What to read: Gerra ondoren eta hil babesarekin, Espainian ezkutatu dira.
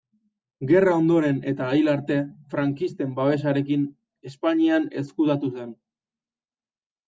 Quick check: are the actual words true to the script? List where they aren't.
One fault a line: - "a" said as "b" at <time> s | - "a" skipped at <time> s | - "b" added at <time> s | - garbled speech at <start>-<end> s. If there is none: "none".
- "arte frankisten" added at 1.9 s
- "dira" said as "zen" at 5.6 s